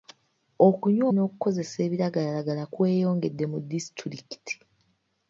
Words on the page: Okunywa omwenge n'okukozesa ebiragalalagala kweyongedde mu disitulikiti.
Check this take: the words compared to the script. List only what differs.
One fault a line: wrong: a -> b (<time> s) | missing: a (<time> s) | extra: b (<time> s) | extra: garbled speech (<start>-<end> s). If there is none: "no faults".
missing: omwenge (1.1 s)